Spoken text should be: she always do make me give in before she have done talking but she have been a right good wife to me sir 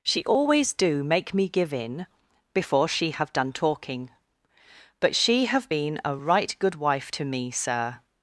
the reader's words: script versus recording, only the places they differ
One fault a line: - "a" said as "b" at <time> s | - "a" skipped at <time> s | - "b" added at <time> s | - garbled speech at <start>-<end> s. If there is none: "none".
none